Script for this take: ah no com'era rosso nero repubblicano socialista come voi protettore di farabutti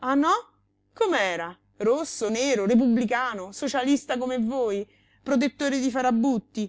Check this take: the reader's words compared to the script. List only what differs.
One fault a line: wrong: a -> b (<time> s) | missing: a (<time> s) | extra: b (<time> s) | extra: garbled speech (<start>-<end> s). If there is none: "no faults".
no faults